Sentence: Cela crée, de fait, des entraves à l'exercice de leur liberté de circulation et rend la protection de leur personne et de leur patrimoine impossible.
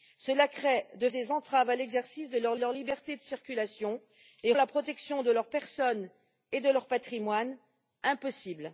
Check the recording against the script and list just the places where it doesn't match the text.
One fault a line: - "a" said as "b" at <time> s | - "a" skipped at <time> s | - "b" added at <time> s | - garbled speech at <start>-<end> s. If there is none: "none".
- "fait" skipped at 1.1 s
- "leur" added at 2.6 s
- "rend" skipped at 4.5 s